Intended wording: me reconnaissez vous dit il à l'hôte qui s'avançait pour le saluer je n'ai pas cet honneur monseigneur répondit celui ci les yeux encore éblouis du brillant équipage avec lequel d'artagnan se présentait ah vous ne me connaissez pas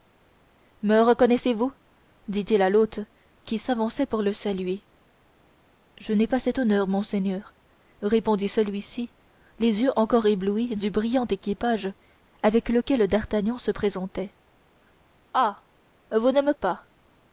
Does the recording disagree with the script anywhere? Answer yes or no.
yes